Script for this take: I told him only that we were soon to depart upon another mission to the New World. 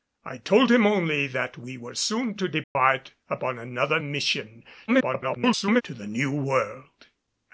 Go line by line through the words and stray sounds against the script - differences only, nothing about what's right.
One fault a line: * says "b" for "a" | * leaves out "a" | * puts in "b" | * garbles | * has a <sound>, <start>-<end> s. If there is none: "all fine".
* has a dropout, 2.6-2.8 s
* garbles